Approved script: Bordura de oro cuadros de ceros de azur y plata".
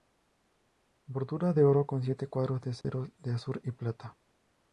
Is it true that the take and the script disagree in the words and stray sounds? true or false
true